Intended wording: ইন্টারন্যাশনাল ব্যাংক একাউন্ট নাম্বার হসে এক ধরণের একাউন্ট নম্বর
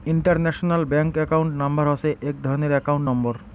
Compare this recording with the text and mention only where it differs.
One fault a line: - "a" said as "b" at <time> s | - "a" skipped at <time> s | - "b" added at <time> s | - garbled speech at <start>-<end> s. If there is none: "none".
none